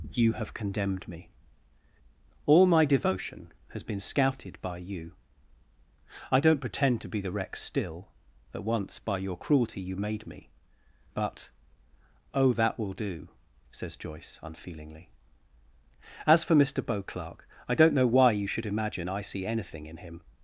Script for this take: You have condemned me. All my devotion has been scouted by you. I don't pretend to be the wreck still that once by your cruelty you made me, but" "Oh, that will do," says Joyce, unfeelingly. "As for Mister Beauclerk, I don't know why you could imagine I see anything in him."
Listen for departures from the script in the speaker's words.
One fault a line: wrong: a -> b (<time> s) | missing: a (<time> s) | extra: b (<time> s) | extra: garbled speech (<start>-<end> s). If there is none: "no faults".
wrong: could -> should (18.5 s)